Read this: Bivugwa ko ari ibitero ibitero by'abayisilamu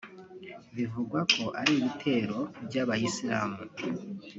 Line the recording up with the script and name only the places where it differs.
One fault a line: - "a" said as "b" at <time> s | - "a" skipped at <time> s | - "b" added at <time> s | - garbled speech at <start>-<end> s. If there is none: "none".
- "ibitero" skipped at 2.4 s